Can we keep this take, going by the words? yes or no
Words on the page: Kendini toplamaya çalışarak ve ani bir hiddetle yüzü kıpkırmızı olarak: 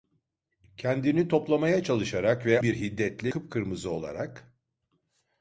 no